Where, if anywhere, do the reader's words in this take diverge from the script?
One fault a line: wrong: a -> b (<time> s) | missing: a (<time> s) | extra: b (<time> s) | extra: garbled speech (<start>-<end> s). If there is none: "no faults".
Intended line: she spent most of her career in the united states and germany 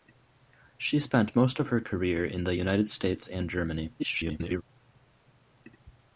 extra: garbled speech (4.0-4.6 s)